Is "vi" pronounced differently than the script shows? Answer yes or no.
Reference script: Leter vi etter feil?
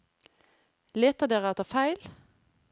yes